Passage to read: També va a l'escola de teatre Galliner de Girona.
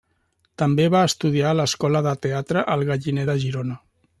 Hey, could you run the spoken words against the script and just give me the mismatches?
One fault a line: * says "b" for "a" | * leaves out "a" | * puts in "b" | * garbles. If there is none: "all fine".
* puts in "estudiar"
* puts in "El"